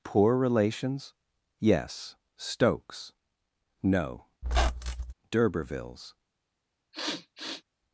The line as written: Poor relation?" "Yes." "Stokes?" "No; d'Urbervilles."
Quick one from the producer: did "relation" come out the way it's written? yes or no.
no